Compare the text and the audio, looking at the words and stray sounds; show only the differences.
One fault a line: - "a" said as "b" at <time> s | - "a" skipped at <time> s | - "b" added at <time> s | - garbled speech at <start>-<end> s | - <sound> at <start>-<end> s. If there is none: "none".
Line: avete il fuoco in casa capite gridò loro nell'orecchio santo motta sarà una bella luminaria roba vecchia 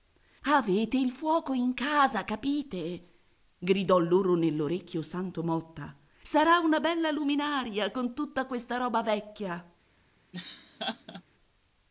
- "con tutta questa" added at 7.9 s
- laugh at 10.3-11.2 s